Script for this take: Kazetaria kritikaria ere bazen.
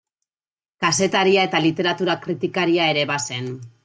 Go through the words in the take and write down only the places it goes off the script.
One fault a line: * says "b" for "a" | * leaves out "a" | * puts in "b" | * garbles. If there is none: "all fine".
* puts in "eta literatura"